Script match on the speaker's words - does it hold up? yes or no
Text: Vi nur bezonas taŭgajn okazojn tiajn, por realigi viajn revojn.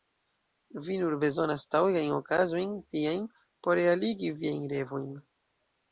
yes